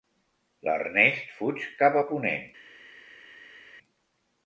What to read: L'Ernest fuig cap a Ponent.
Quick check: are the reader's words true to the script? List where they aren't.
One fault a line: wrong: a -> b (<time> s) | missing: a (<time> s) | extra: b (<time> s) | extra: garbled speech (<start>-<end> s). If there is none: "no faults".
no faults